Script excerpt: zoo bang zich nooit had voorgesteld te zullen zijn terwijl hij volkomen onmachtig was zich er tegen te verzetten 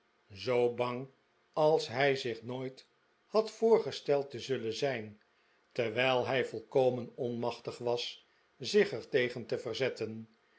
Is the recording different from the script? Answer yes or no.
yes